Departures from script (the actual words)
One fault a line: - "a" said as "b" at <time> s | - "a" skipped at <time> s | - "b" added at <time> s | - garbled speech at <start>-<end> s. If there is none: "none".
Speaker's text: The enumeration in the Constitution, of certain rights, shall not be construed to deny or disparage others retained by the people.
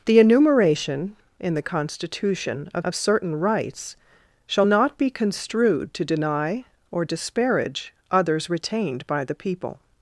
- "of" added at 2.8 s